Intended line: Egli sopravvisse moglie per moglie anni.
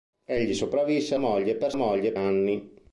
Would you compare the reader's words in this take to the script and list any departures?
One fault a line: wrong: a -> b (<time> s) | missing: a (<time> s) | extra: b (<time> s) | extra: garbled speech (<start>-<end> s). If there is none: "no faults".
no faults